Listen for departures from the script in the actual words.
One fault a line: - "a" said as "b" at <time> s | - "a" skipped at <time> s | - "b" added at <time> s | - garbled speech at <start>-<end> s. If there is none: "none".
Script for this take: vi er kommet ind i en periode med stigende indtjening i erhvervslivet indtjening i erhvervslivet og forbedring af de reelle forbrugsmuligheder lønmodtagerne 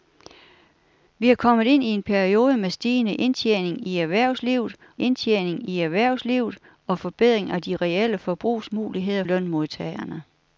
none